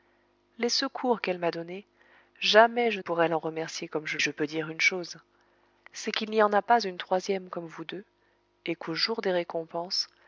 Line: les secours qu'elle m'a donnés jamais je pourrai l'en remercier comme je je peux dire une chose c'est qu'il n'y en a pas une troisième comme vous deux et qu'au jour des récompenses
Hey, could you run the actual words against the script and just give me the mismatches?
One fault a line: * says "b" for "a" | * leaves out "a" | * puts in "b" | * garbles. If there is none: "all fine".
all fine